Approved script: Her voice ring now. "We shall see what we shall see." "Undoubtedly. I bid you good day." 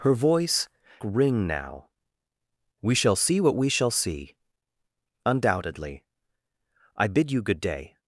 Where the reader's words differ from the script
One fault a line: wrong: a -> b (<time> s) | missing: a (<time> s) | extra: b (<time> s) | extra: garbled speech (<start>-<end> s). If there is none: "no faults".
no faults